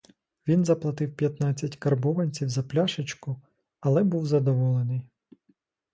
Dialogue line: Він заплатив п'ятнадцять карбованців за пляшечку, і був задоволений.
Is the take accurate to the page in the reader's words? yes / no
no